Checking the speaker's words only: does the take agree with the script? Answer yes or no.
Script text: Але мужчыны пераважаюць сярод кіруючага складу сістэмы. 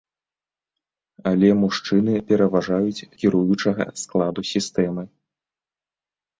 no